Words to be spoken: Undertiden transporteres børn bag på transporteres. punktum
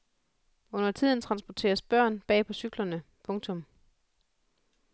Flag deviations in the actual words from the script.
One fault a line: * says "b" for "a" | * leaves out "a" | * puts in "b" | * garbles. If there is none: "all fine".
* says "cyklerne" for "transporteres"